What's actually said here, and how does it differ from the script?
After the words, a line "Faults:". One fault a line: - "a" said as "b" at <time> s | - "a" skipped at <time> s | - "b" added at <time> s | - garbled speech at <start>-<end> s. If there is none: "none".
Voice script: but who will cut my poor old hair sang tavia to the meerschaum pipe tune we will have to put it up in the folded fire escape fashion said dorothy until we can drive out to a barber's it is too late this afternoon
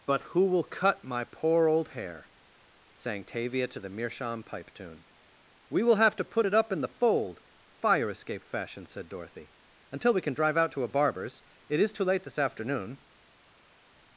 but who will cut my poor old hair sang tavia to the meerschaum pipe tune we will have to put it up in the fold fire escape fashion said dorothy until we can drive out to a barber's it is too late this afternoon
Faults:
- "folded" said as "fold" at 6.9 s